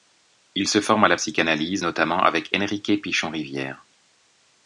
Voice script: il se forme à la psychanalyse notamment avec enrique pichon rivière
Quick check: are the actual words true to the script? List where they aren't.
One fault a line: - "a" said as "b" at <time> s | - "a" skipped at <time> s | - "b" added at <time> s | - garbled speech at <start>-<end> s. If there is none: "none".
none